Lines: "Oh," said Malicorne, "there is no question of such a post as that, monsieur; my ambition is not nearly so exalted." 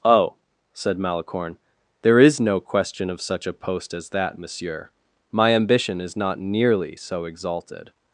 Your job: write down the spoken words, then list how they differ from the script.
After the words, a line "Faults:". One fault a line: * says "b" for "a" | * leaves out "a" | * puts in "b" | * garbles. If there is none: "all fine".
"Oh," said Malicorne, "there is no question of such a post as that, monsieur; my ambition is not nearly so exalted."
Faults:
all fine